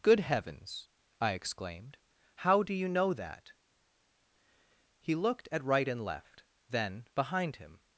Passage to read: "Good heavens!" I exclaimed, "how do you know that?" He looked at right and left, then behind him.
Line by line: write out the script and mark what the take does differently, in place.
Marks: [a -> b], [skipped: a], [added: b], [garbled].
"Good heavens!" I exclaimed, "how do you know that?" He looked at right and left, then behind him.